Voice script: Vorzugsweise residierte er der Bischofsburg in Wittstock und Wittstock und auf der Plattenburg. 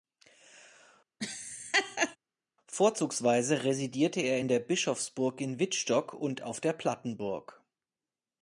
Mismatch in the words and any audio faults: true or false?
true